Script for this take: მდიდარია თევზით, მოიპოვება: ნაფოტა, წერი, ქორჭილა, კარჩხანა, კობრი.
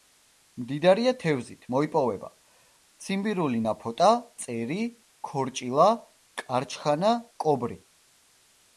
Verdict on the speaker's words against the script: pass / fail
fail